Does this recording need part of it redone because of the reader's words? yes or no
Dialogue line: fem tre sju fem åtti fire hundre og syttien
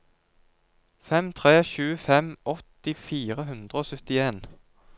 no